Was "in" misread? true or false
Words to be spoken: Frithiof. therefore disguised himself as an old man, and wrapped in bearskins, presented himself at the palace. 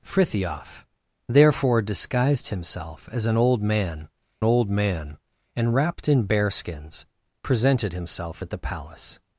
false